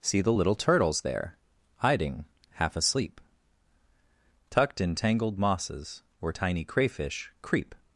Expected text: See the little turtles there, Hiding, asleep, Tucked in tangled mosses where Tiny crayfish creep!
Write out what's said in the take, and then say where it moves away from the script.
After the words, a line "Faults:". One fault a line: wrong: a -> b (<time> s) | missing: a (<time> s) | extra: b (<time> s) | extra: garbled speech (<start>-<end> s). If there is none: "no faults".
See the little turtles there, Hiding, half asleep, Tucked in tangled mosses where Tiny crayfish creep!
Faults:
extra: half (2.5 s)